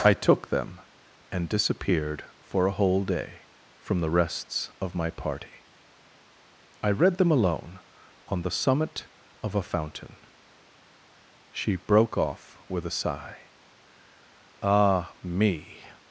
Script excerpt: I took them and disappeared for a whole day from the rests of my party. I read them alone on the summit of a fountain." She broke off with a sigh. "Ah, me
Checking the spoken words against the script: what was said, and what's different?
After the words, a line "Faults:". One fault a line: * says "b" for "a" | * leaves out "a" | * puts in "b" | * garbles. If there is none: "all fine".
I took them and disappeared for a whole day from the rests of my party. I read them alone on the summit of a fountain." She broke off with a sigh. "Ah, me
Faults:
all fine